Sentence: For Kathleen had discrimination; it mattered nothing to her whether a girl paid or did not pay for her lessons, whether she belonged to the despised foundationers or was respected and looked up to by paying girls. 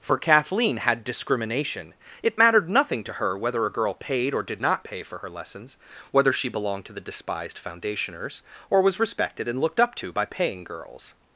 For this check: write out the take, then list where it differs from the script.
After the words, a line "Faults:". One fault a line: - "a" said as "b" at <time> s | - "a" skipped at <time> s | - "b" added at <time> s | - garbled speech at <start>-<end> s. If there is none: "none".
For Kathleen had discrimination; it mattered nothing to her whether a girl paid or did not pay for her lessons, whether she belonged to the despised foundationers or was respected and looked up to by paying girls.
Faults:
none